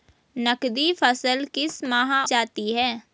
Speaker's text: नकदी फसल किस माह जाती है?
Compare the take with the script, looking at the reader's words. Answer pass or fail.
pass